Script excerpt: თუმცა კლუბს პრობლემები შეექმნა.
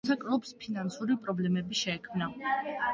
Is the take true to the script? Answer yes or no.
no